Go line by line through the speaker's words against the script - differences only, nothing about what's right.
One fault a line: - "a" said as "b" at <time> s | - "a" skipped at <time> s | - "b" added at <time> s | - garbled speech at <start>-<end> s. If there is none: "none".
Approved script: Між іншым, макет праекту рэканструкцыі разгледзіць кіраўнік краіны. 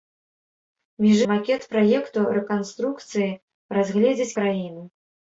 - "іншым" skipped at 1.2 s
- "кіраўнік" skipped at 4.3 s